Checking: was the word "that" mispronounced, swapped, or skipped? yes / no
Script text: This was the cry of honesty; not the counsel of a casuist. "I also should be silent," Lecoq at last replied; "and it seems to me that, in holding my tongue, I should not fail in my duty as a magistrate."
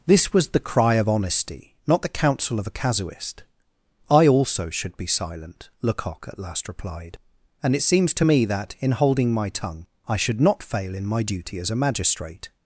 no